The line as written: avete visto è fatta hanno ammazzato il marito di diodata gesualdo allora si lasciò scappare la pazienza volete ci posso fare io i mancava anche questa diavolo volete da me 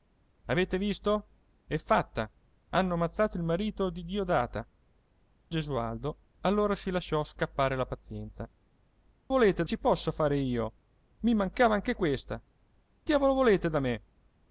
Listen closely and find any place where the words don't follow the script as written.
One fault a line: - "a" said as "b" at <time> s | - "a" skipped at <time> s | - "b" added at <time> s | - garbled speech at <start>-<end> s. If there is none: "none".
none